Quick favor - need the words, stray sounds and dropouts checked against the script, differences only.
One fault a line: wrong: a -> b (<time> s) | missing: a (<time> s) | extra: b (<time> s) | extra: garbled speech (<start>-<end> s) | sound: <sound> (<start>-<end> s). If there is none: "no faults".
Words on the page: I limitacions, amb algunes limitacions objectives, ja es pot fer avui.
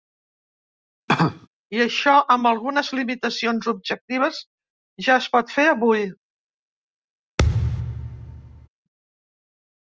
sound: cough (1.1-1.5 s)
wrong: limitacions -> això (1.9 s)
sound: thud (7.4-8.7 s)